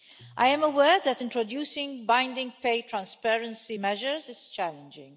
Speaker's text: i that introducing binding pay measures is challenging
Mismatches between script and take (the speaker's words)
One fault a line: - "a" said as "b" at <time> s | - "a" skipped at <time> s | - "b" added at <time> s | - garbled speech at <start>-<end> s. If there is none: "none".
- "am aware" added at 0.5 s
- "transparency" added at 2.8 s